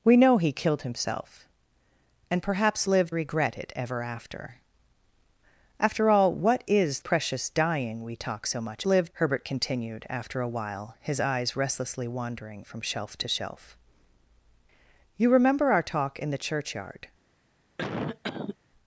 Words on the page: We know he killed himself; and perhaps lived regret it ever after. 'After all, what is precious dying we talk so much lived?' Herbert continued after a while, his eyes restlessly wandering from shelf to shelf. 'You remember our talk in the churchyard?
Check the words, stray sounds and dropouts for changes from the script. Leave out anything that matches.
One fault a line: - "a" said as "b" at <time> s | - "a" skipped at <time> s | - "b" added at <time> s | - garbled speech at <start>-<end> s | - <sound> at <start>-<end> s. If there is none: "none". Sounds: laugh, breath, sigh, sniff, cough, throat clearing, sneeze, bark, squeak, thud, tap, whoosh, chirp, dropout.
- cough at 17.8-18.6 s